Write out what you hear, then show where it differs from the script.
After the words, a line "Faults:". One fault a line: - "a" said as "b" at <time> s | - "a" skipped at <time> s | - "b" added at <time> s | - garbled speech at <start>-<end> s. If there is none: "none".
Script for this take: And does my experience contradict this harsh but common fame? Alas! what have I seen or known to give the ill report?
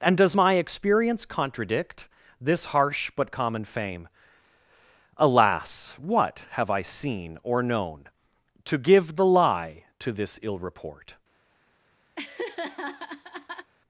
And does my experience contradict this harsh but common fame? Alas! what have I seen or known to give the lie to this ill report?
Faults:
- "lie to this" added at 9.2 s